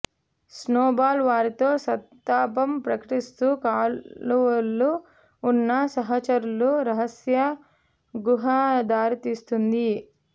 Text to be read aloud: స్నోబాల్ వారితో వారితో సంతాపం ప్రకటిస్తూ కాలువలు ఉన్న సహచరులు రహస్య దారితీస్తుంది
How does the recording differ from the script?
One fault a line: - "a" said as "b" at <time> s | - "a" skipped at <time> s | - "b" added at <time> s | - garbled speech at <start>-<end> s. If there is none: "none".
- "వారితో" skipped at 1.7 s
- "గుహ" added at 8.1 s